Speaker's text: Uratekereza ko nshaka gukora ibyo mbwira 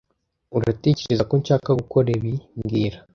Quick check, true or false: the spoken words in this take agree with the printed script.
false